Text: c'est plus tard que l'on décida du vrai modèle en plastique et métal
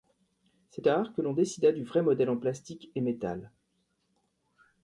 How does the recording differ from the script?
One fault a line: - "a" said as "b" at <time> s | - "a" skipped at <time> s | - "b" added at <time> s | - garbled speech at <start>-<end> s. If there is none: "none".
- "plus" skipped at 0.8 s